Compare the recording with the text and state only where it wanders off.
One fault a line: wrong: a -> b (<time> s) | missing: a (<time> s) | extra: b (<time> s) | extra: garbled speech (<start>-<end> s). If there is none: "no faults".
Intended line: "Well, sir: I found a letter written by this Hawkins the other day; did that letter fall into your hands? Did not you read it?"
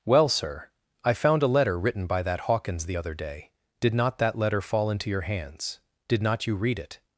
wrong: this -> that (2.2 s)
extra: not (3.9 s)